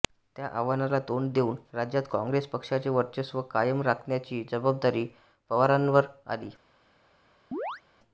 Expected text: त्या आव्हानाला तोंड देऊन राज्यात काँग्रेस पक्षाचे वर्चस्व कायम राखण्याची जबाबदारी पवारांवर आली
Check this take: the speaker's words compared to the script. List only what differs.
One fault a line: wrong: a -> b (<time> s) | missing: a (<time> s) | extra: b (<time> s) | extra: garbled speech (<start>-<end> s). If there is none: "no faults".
no faults